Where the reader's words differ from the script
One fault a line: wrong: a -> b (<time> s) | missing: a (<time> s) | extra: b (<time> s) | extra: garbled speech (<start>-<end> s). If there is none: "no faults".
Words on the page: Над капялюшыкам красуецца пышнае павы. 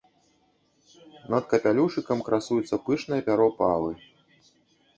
extra: пяро (3.3 s)